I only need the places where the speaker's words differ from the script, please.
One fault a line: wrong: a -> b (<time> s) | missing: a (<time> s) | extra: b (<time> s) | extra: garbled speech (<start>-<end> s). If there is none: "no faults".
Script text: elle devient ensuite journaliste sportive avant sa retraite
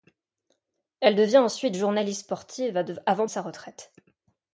no faults